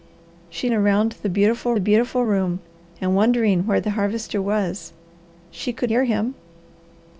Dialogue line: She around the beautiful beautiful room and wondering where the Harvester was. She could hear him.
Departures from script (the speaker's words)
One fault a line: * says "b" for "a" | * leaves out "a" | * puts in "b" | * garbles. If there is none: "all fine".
all fine